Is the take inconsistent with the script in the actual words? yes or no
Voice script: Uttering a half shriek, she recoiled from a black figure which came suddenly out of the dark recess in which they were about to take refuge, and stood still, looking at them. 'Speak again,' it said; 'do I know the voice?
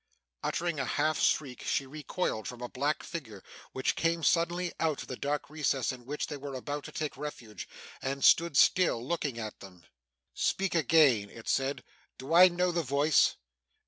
no